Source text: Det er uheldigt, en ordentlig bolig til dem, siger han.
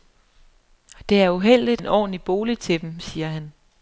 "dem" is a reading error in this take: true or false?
false